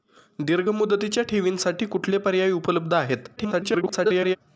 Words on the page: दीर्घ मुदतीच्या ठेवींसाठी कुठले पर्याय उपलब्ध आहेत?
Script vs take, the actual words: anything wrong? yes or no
yes